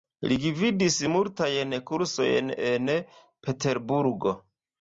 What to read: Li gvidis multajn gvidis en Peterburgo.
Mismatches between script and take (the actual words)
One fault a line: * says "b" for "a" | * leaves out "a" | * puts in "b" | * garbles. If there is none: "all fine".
* says "kursojn" for "gvidis"